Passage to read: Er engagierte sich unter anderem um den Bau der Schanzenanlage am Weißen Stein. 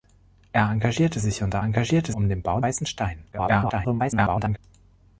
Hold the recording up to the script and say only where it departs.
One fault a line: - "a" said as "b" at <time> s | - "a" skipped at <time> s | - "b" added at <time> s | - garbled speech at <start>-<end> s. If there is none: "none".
- "anderem" said as "engagierte" at 1.6 s
- "der Schanzenanlage am" skipped at 2.6 s
- garbled speech at 3.3-4.6 s